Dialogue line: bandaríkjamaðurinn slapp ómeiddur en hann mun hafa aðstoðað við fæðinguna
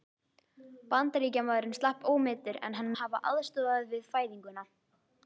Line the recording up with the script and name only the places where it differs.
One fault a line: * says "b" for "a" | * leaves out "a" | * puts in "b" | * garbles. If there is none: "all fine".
* leaves out "mun"